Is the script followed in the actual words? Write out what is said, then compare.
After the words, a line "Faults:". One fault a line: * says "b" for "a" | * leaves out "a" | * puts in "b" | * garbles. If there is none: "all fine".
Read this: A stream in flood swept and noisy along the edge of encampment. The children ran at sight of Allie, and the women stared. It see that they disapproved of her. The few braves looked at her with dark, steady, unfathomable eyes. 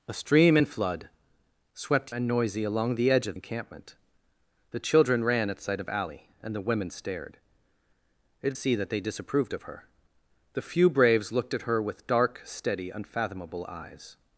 A stream in flood swept and noisy along the edge of encampment. The children ran at sight of Allie, and the women stared. It see that they disapproved of her. The few braves looked at her with dark, steady, unfathomable eyes.
Faults:
all fine